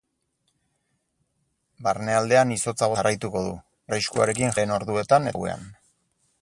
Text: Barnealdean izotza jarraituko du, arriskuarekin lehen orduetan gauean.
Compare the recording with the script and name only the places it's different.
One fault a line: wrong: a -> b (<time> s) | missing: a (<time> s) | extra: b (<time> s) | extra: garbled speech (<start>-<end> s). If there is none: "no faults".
no faults